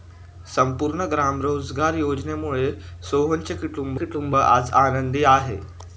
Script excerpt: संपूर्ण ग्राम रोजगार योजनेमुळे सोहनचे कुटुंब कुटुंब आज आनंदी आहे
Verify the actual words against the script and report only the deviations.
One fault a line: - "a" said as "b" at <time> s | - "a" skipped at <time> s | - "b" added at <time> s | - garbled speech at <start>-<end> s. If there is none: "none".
none